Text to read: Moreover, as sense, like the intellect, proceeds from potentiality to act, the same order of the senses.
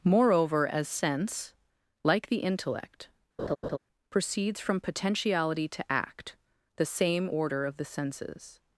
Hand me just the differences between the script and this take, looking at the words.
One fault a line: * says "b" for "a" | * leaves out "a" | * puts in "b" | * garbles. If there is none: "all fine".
all fine